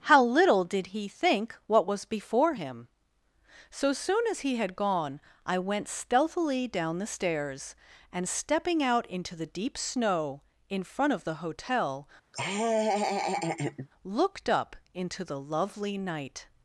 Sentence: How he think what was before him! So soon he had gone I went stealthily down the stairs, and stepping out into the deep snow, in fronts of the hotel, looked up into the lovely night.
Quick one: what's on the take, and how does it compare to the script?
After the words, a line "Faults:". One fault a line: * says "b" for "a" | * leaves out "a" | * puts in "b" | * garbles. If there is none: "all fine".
How little did he think what was before him! So soon as he had gone I went stealthily down the stairs, and stepping out into the deep snow, in front of the hotel, looked up into the lovely night.
Faults:
* puts in "little did"
* puts in "as"
* says "front" for "fronts"